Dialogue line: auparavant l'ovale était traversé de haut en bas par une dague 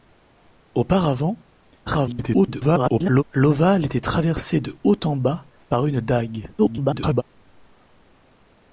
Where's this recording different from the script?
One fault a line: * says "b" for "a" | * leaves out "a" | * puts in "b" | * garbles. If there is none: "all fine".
* garbles
* garbles